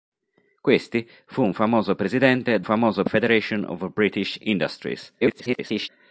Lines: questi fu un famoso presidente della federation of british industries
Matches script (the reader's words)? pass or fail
fail